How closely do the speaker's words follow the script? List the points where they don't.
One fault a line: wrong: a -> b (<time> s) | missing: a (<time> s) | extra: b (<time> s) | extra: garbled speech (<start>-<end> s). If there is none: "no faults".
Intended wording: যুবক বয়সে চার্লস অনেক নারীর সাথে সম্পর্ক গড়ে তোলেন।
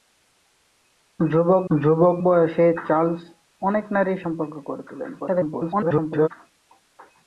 extra: যুবক (1.7 s)
missing: সাথে (4.2 s)
extra: garbled speech (5.2-6.3 s)